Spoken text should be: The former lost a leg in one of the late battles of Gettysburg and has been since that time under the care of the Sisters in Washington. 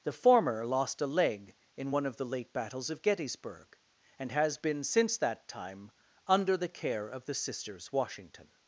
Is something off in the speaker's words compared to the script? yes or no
yes